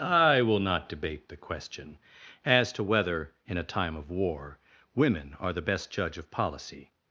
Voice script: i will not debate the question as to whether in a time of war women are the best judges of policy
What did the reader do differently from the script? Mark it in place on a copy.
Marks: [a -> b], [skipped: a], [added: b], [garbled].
i will not debate the question as to whether in a time of war women are the best [judges -> judge] of policy